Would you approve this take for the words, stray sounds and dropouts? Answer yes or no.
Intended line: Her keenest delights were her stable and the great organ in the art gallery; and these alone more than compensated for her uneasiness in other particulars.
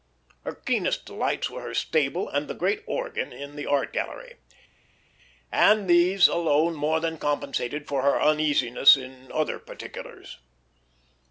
yes